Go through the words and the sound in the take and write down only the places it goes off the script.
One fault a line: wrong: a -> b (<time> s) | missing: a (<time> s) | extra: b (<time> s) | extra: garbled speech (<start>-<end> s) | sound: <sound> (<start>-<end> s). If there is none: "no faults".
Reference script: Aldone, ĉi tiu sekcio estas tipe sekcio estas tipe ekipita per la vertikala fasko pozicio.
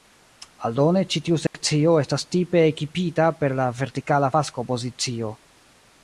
sound: dropout (1.5-1.5 s)
missing: sekcio estas tipe (2.6 s)